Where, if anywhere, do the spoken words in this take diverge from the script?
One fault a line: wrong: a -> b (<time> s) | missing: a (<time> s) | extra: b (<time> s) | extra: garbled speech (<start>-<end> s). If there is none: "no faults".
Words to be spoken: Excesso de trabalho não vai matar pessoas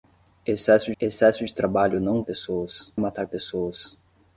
extra: excesso (1.0 s)
wrong: vai -> pessoas (2.2 s)